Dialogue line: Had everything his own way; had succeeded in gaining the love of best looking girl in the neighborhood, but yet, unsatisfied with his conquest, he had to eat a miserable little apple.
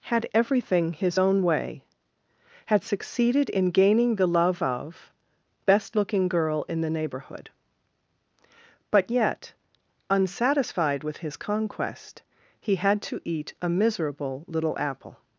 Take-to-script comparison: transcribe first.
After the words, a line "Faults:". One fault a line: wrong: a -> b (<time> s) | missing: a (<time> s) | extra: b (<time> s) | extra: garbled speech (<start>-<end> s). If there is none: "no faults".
Had everything his own way; had succeeded in gaining the love of best looking girl in the neighborhood, but yet, unsatisfied with his conquest, he had to eat a miserable little apple.
Faults:
no faults